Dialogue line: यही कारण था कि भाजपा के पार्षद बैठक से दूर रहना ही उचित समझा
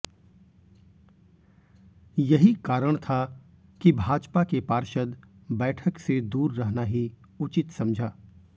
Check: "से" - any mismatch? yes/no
no